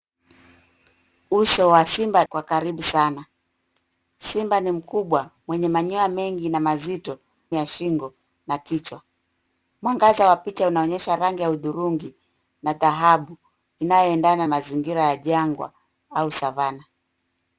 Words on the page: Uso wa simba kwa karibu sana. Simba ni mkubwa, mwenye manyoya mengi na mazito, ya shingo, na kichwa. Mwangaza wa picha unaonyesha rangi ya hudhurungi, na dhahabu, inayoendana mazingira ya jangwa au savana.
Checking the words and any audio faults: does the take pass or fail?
pass